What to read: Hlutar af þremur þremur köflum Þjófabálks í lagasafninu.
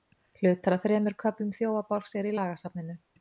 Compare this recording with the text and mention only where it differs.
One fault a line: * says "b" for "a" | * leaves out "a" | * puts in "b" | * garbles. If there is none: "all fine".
* leaves out "þremur"
* puts in "eru"